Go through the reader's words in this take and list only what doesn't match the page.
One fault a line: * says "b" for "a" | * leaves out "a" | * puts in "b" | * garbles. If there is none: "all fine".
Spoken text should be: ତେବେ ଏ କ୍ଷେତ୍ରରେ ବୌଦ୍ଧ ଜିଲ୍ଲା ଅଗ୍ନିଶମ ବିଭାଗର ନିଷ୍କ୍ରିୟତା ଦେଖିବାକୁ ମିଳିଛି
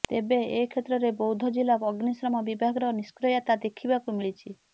all fine